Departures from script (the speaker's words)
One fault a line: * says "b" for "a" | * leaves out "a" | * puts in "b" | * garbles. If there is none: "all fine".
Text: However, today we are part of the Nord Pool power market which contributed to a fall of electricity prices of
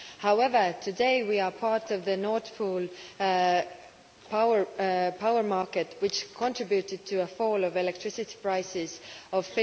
all fine